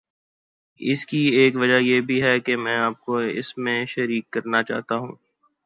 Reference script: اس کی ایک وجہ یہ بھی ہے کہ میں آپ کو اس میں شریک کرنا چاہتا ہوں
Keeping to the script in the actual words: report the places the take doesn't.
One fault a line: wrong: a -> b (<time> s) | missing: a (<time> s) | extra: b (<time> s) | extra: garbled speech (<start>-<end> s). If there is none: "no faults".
no faults